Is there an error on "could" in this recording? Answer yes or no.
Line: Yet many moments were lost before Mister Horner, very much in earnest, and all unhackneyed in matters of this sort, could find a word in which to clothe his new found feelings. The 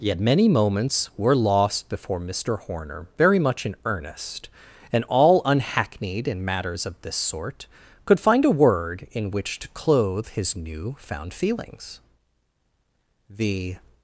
no